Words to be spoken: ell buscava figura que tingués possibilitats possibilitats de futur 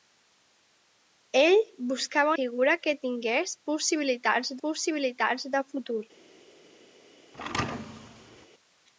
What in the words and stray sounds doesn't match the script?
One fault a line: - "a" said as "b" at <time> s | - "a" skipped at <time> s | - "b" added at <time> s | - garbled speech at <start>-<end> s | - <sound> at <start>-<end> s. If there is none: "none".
- thud at 7.3-8.5 s